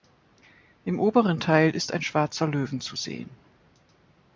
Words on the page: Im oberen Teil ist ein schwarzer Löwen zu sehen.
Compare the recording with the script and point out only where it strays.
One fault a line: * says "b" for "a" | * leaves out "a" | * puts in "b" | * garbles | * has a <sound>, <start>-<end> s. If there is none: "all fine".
all fine